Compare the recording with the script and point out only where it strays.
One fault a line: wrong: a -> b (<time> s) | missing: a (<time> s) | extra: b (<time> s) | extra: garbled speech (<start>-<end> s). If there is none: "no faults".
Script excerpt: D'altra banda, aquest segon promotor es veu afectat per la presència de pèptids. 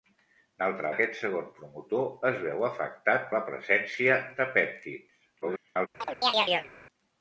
missing: banda (0.9 s)
missing: per (3.3 s)
extra: garbled speech (5.4-5.9 s)